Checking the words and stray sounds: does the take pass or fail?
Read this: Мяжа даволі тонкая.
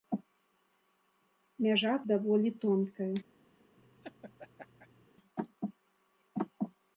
fail